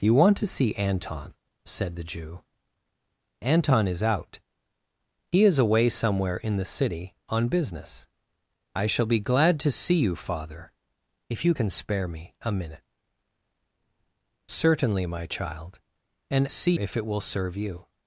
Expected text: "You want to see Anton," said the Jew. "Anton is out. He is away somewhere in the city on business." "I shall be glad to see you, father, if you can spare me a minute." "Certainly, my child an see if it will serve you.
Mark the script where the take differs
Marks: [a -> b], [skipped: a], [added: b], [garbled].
"You want to see Anton," said the Jew. "Anton is out. He is away somewhere in the city on business." "I shall be glad to see you, father, if you can spare me a minute." "Certainly, my child an see if it will serve you.